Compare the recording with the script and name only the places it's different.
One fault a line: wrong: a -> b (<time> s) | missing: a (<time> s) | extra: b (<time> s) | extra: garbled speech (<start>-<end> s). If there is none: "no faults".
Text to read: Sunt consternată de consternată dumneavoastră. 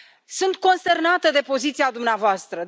wrong: consternată -> poziția (1.4 s)